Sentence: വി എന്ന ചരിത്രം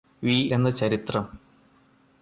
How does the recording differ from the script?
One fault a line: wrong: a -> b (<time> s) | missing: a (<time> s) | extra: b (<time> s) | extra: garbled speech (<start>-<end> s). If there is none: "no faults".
no faults